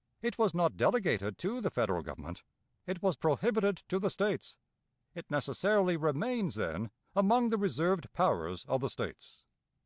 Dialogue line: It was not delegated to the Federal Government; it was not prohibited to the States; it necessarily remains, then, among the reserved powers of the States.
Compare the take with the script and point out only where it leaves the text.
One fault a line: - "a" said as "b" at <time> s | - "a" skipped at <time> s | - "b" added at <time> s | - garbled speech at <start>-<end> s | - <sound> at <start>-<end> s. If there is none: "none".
- "not" skipped at 3.2 s